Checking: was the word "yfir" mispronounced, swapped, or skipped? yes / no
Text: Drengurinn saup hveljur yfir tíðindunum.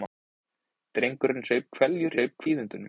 yes